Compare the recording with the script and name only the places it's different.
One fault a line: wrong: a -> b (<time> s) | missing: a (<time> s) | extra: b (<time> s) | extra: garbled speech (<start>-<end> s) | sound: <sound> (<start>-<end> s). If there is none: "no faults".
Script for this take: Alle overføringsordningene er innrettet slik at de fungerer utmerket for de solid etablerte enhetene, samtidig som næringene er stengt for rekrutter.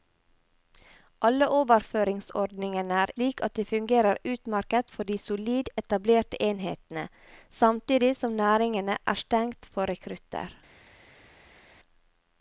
missing: innrettet (3.1 s)